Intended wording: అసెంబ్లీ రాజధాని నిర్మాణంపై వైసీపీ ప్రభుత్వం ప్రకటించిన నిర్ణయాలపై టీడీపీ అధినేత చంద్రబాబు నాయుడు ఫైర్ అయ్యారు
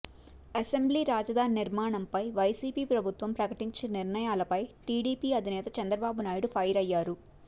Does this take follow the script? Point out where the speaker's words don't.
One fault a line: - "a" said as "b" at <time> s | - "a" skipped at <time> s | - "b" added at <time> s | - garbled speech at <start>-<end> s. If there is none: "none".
none